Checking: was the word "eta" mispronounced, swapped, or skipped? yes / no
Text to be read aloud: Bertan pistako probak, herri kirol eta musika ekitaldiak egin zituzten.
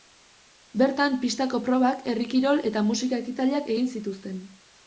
no